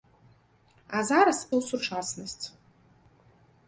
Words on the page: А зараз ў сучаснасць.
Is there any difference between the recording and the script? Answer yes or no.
no